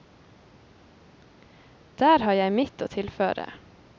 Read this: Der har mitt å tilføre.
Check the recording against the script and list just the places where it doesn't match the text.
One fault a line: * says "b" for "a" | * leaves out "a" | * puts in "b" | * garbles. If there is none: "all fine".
* puts in "jeg"